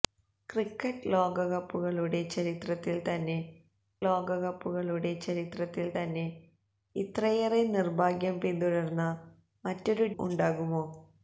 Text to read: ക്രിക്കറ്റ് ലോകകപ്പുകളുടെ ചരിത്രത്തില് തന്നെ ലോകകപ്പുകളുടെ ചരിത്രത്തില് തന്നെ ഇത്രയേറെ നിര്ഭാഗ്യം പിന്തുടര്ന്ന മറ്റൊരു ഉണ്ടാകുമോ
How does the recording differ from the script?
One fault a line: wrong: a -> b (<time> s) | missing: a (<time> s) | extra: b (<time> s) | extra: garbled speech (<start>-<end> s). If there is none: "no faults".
no faults